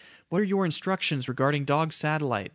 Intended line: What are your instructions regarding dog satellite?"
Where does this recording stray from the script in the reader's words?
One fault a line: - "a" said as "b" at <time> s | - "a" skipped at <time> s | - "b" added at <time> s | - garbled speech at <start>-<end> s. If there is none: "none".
none